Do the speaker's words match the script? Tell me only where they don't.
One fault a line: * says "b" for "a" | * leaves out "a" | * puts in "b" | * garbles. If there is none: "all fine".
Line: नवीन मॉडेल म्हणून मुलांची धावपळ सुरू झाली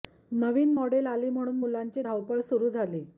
* puts in "आली"